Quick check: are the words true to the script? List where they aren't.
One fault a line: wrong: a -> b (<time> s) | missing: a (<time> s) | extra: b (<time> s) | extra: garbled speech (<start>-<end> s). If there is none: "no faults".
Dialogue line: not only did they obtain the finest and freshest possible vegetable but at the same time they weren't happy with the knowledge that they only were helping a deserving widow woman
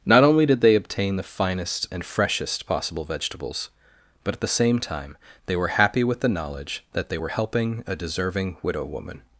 wrong: vegetable -> vegetables (3.0 s)
wrong: weren't -> were (5.5 s)
missing: only (7.2 s)